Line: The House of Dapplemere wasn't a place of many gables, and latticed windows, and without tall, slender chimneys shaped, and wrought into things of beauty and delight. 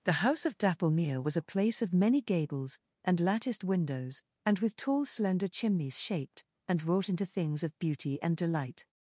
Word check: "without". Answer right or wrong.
wrong